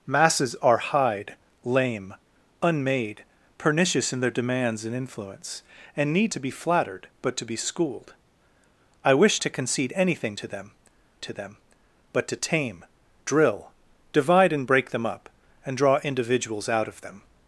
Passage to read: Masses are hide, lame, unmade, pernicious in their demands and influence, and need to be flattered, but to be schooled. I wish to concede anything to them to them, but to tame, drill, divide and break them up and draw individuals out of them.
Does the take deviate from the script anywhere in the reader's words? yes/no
no